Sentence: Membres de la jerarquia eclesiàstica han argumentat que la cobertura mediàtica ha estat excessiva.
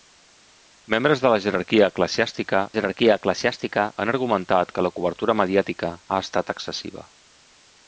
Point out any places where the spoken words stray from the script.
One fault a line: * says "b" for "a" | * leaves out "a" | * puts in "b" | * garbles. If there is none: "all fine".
* puts in "jerarquia eclesiàstica"